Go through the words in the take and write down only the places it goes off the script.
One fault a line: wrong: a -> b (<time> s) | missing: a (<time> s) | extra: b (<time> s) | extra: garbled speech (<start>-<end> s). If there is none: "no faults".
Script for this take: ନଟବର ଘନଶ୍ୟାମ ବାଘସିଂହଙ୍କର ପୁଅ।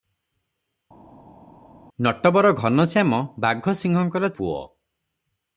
no faults